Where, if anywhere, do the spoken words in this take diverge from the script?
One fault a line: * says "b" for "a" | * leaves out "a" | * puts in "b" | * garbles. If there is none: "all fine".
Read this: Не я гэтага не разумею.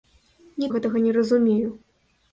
all fine